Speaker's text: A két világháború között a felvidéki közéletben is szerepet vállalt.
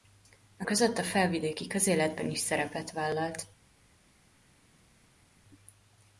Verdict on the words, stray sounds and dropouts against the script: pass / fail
fail